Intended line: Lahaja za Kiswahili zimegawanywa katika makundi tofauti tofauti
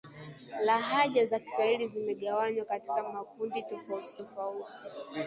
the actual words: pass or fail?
pass